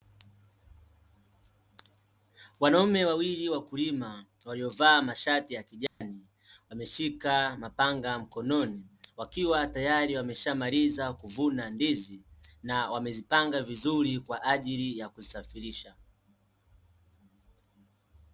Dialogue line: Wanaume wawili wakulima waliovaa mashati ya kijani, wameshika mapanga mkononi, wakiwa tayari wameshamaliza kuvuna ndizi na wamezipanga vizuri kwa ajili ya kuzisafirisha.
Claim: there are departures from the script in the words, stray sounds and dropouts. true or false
true